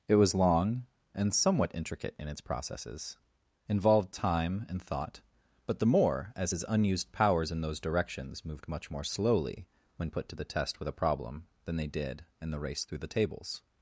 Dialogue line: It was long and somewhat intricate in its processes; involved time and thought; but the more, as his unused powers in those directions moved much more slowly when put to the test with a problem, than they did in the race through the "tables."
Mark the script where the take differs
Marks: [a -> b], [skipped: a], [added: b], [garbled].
It was long and somewhat intricate in its processes; involved time and thought; but the more, as his unused powers in those directions moved much more slowly when put to the test with a problem, than they did in the race through the "tables."